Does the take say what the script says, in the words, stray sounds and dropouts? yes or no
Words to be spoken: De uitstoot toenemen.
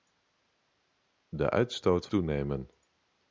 yes